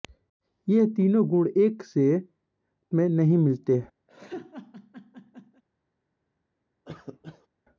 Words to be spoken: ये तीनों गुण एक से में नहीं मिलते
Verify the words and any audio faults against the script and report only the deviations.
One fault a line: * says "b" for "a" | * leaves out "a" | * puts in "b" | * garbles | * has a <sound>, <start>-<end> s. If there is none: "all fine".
* has a laugh, 4.1-5.6 s
* has a cough, 6.9-7.5 s